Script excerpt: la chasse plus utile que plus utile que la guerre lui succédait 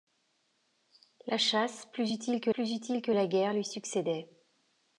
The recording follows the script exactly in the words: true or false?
true